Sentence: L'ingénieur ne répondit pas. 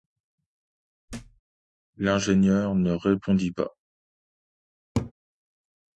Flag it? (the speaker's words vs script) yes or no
no